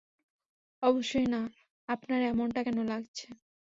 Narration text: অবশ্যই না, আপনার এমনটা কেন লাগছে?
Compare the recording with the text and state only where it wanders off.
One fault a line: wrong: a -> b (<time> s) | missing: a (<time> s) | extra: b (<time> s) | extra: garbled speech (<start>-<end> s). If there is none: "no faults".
no faults